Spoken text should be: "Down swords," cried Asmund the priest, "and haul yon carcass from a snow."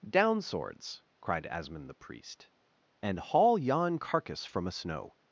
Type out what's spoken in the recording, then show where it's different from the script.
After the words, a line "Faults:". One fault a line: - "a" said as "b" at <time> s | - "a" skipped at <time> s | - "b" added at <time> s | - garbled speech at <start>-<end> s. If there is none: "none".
"Down swords," cried Asmund the priest, "and haul yon carcass from a snow."
Faults:
none